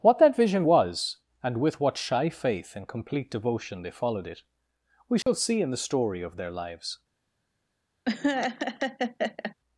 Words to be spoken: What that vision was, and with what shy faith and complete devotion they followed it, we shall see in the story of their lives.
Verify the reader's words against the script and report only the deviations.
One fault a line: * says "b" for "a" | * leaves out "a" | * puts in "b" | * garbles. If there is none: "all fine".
all fine